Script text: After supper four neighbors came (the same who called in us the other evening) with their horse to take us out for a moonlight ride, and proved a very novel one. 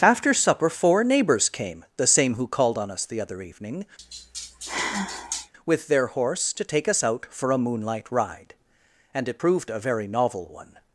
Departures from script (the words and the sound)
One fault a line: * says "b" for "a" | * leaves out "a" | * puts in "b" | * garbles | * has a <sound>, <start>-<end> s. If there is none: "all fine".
* says "on" for "in"
* has a sigh, 4.0-5.5 s
* puts in "it"